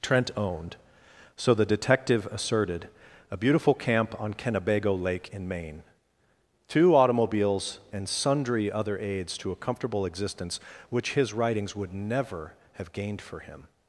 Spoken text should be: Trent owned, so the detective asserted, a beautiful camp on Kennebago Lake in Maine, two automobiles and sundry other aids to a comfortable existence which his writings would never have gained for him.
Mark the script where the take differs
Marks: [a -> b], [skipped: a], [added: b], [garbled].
Trent owned, so the detective asserted, a beautiful camp on Kennebago Lake in Maine, two automobiles and sundry other aids to a comfortable existence which his writings would never have gained for him.